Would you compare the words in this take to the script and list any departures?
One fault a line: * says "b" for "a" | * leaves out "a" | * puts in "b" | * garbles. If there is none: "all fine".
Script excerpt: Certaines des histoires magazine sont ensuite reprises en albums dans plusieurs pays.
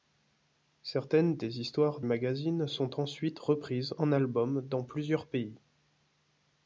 all fine